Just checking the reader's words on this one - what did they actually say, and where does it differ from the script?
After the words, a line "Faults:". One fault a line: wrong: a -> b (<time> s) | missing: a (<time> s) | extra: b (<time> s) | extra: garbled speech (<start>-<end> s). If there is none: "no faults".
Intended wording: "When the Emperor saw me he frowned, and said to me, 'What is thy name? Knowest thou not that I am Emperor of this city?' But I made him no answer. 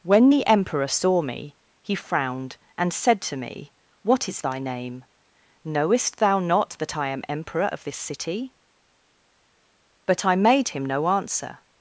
"When the Emperor saw me he frowned, and said to me, 'What is thy name? Knowest thou not that I am Emperor of this city?' But I made him no answer.
Faults:
no faults